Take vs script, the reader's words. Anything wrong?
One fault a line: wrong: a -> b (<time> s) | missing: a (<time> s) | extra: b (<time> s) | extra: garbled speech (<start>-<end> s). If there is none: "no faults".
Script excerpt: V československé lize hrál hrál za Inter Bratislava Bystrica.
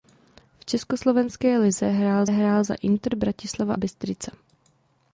no faults